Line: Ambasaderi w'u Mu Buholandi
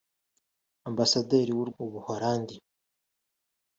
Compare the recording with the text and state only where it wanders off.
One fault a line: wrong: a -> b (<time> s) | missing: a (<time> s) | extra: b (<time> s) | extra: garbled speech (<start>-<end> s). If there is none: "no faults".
no faults